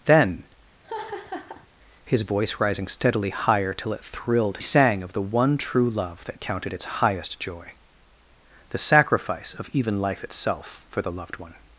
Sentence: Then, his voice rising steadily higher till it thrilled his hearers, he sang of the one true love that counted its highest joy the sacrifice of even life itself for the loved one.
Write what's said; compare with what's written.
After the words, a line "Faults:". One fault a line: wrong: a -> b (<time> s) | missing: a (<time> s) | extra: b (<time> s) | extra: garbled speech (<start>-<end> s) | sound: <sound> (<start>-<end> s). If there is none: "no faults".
Then, his voice rising steadily higher till it thrilled sang of the one true love that counted its highest joy the sacrifice of even life itself for the loved one.
Faults:
sound: laugh (0.8-1.7 s)
missing: his hearers he (4.6 s)